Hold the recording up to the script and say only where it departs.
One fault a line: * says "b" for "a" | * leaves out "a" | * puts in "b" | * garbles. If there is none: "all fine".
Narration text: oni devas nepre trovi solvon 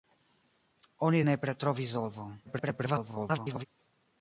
* leaves out "devas"
* garbles